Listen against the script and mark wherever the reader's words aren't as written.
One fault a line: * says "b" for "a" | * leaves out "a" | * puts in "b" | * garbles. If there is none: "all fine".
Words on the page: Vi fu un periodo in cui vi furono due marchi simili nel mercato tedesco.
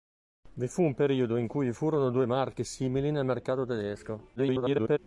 * garbles